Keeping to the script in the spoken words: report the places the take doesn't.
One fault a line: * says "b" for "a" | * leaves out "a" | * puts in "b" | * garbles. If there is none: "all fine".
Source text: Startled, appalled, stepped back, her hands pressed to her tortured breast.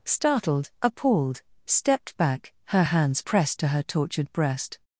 all fine